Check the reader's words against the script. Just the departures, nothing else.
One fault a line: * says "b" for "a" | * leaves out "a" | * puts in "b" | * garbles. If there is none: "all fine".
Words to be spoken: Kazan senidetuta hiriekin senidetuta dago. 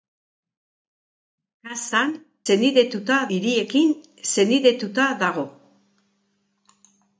all fine